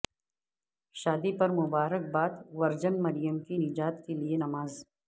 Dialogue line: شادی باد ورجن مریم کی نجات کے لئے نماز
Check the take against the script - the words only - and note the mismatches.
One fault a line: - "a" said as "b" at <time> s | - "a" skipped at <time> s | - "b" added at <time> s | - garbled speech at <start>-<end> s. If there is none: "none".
- "پر مبارک" added at 1.4 s